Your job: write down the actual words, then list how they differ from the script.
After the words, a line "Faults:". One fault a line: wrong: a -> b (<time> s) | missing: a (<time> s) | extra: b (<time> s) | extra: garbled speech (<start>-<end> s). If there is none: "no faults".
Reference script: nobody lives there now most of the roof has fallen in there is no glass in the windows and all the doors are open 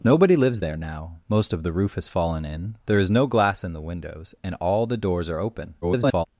nobody lives there now most of the roof has fallen in there is no glass in the windows and all the doors are open [garbled]
Faults:
extra: garbled speech (5.8-6.3 s)